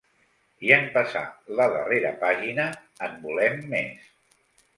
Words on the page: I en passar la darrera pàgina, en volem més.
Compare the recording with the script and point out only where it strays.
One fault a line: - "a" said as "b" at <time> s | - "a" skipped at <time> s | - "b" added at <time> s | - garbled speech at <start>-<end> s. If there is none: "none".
none